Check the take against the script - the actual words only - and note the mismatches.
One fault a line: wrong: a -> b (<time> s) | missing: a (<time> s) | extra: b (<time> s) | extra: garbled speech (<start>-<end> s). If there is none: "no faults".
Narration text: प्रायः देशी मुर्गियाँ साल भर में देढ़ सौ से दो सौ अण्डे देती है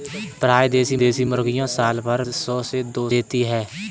extra: देशी (1.0 s)
missing: में देढ़ (2.2 s)
missing: सौ अण्डे (3.1 s)